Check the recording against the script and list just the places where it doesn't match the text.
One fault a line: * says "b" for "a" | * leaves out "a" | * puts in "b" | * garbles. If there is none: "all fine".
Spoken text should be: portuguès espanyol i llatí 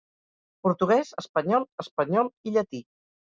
* puts in "espanyol"